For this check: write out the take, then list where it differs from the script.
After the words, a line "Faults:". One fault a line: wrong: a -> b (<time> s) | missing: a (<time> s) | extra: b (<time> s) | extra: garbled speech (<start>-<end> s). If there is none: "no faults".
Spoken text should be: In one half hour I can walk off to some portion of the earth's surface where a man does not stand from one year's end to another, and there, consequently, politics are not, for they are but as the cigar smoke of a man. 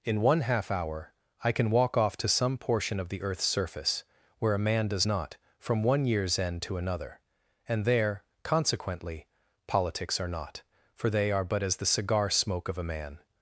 In one half hour I can walk off to some portion of the earth's surface where a man does not from one year's end to another, and there, consequently, politics are not, for they are but as the cigar smoke of a man.
Faults:
missing: stand (5.3 s)